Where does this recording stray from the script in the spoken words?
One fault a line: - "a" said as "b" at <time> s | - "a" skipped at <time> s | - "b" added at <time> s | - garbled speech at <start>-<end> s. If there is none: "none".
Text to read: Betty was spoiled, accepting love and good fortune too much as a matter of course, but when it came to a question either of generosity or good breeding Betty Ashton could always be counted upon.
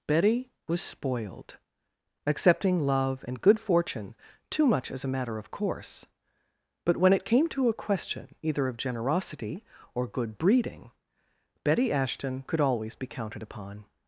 none